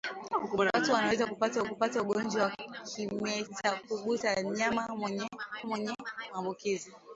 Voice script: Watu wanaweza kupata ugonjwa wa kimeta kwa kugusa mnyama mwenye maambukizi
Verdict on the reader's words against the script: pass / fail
fail